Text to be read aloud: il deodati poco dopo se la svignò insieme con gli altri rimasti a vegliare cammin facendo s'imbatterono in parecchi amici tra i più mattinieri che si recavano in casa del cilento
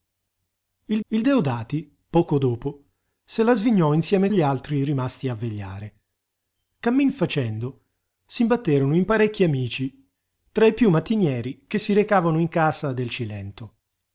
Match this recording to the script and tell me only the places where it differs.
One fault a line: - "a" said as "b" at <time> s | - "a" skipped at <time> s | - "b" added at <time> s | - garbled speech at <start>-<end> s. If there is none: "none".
- "il" added at 1.1 s
- "con" skipped at 4.3 s